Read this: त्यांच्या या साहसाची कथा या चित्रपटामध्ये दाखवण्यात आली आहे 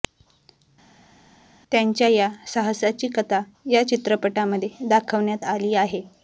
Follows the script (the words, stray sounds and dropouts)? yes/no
yes